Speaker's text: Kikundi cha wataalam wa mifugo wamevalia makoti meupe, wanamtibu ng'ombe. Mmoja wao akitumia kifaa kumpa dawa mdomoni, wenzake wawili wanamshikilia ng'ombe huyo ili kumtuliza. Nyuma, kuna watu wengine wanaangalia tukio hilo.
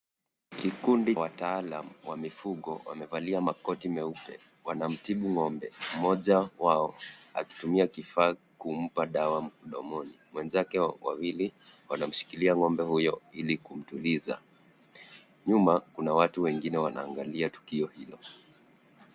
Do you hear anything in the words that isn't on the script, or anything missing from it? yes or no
yes